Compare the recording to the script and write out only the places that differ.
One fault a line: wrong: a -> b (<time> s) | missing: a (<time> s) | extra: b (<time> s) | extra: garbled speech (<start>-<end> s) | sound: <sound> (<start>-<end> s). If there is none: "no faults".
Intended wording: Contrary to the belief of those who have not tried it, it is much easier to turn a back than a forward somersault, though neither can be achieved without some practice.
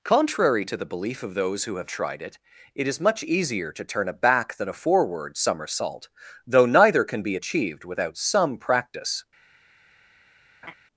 missing: not (1.9 s)
sound: laugh (10.6-10.7 s)